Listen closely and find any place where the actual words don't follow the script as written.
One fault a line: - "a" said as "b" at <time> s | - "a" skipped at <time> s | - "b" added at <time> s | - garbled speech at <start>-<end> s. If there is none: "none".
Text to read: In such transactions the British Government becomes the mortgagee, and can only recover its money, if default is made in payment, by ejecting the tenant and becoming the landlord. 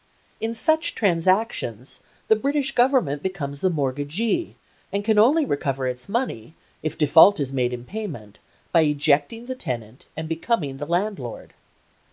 none